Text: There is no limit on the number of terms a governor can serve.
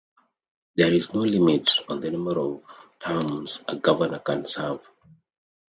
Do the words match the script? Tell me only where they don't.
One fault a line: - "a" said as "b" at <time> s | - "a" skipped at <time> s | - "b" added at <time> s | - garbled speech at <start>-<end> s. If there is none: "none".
none